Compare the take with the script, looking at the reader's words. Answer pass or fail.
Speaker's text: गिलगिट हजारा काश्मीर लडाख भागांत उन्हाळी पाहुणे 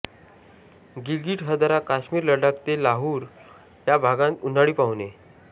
fail